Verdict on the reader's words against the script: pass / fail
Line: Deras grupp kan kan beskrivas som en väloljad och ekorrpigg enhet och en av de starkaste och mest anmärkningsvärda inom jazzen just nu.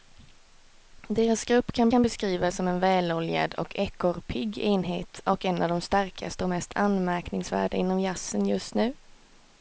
pass